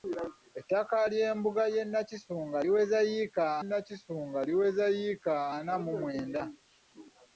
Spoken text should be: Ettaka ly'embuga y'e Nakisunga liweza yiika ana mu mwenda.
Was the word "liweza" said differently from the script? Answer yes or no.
no